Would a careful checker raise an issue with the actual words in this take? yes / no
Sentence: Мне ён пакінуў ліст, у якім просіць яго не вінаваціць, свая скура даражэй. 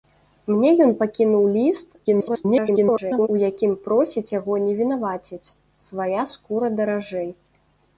yes